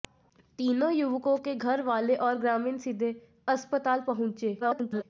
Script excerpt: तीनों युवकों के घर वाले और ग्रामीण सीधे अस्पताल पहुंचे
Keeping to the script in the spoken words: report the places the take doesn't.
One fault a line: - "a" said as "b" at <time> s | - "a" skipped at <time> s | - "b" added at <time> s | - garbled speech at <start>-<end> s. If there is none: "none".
- garbled speech at 4.6-5.0 s